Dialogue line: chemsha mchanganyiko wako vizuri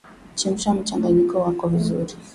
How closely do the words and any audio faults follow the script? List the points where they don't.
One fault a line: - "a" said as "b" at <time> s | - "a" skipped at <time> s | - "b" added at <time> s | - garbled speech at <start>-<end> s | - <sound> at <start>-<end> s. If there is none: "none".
none